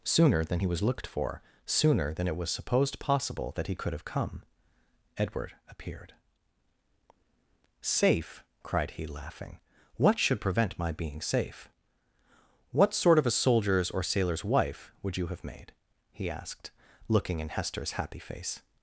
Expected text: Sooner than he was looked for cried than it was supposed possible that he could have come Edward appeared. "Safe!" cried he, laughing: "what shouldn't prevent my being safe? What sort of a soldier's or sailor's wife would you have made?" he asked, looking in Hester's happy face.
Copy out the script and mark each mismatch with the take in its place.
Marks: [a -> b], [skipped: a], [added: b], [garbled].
Sooner than he was looked for [cried -> sooner] than it was supposed possible that he could have come Edward appeared. "Safe!" cried he, laughing: "what [shouldn't -> should] prevent my being safe? What sort of a soldier's or sailor's wife would you have made?" he asked, looking in Hester's happy face.